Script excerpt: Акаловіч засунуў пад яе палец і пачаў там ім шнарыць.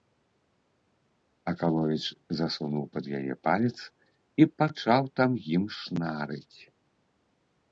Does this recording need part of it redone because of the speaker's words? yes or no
no